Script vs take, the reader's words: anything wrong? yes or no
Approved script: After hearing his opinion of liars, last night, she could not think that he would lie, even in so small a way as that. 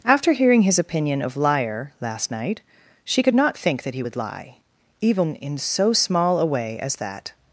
yes